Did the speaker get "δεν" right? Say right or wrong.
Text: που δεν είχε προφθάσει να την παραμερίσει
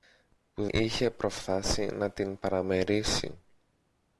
wrong